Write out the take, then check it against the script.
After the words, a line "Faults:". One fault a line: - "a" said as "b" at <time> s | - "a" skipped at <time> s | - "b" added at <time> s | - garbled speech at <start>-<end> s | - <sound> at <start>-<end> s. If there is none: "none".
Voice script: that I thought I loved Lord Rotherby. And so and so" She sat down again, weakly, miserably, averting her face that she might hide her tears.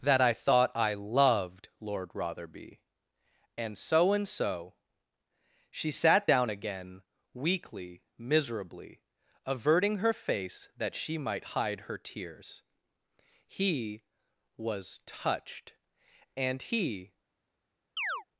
that I thought I loved Lord Rotherby. And so and so" She sat down again, weakly, miserably, averting her face that she might hide her tears. He was touched, and he
Faults:
- "He was touched and he" added at 13.5 s
- chirp at 18.0-18.2 s